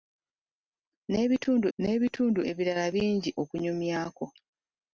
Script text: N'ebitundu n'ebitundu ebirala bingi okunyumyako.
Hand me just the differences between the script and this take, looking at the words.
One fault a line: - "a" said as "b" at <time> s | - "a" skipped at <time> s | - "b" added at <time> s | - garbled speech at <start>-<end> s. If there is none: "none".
none